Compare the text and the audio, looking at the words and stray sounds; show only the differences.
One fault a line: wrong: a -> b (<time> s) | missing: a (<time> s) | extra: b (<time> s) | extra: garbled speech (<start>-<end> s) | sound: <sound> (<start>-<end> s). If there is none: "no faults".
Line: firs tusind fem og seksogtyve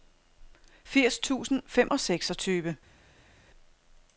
no faults